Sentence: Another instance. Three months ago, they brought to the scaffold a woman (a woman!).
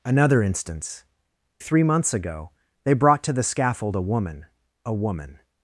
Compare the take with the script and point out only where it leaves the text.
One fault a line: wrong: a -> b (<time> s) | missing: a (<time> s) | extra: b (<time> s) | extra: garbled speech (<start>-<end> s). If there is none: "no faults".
no faults